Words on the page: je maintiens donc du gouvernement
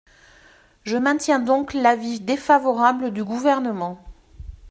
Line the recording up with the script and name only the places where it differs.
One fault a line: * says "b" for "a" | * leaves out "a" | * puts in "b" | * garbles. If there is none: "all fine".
* puts in "l'avis défavorable"